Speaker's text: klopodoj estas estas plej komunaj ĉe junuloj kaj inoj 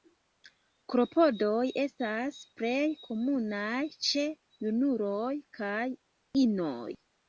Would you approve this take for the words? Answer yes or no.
no